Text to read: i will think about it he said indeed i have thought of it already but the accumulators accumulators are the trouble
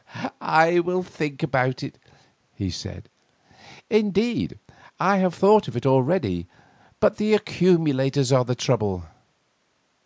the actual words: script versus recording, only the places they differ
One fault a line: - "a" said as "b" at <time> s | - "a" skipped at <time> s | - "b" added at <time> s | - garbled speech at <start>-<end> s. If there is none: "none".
- "accumulators" skipped at 8.3 s